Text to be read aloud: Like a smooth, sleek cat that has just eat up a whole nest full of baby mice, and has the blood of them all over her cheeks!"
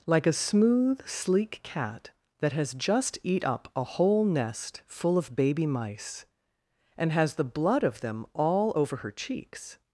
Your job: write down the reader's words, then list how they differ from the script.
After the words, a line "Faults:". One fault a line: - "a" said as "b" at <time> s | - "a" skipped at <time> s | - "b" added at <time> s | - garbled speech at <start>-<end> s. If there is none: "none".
Like a smooth, sleek cat that has just eat up a whole nest full of baby mice, and has the blood of them all over her cheeks!"
Faults:
none